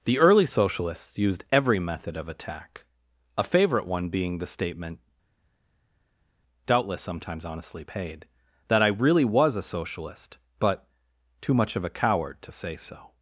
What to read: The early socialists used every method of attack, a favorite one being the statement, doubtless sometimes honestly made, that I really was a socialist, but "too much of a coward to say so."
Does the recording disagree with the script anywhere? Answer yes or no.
yes